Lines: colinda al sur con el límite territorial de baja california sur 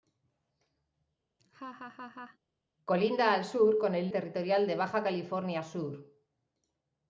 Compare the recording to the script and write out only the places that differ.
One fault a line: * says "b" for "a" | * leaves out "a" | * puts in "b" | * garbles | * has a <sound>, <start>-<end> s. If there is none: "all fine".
* has a laugh, 1.4-2.4 s
* leaves out "límite"